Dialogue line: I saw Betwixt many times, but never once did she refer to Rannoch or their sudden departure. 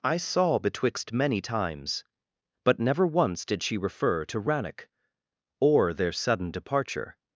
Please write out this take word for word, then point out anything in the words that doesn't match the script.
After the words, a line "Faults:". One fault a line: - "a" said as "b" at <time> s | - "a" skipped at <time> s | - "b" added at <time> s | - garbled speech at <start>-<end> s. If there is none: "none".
I saw Betwixt many times, but never once did she refer to Rannoch or their sudden departure.
Faults:
none